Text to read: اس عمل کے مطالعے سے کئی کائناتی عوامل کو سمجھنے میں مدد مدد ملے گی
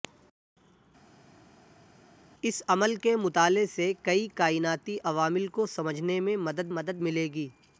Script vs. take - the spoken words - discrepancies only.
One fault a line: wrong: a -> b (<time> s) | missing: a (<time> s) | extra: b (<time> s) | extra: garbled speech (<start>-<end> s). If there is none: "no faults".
no faults